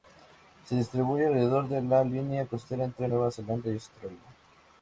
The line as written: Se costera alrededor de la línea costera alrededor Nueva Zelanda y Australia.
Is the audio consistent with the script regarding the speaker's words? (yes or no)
no